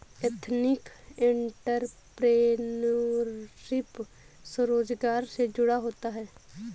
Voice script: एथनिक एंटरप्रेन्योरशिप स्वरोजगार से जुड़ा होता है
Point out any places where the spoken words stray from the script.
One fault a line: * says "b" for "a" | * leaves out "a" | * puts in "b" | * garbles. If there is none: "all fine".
all fine